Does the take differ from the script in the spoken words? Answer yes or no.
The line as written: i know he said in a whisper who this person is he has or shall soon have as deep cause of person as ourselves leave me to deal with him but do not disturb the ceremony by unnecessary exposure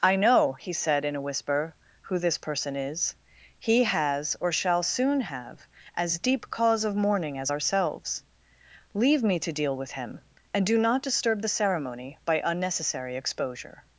yes